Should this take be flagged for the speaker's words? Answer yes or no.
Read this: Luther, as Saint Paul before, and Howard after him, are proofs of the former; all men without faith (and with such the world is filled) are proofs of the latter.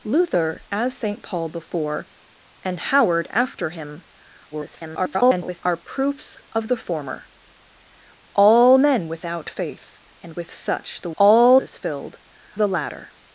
yes